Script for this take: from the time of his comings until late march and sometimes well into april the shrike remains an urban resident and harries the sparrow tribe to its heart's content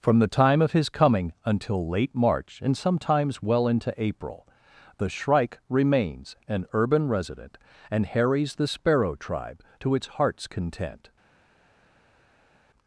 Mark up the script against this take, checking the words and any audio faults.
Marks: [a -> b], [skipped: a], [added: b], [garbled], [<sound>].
from the time of his [comings -> coming] until late march and sometimes well into april the shrike remains an urban resident and harries the sparrow tribe to its heart's content